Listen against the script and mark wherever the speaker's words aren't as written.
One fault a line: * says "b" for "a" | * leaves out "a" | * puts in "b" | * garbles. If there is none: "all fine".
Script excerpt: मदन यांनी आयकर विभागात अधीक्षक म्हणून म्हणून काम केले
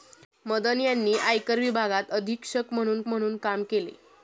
all fine